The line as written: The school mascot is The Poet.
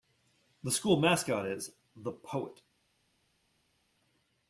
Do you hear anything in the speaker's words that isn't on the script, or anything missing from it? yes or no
no